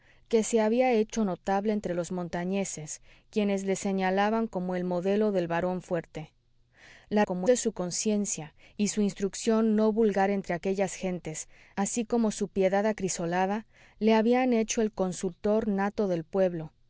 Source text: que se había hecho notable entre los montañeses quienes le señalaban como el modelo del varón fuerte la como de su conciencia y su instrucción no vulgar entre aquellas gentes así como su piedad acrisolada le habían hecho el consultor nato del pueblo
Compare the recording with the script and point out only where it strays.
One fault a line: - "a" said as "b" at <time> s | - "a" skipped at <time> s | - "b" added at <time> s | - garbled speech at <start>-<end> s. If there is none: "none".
none